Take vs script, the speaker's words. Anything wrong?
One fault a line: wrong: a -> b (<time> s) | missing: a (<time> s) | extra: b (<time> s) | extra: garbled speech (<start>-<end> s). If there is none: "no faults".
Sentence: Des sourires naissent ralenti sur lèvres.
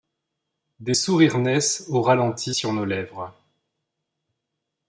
extra: au (1.9 s)
extra: nos (2.7 s)